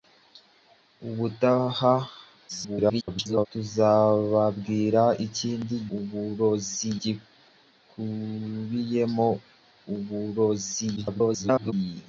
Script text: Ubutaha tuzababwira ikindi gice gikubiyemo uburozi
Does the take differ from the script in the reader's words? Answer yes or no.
yes